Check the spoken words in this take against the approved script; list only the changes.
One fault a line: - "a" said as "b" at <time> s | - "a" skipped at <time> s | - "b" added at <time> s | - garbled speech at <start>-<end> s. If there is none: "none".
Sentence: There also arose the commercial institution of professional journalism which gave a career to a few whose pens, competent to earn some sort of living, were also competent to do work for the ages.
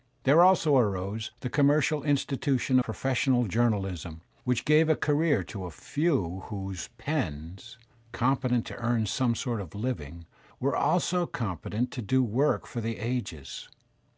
- "of" skipped at 2.8 s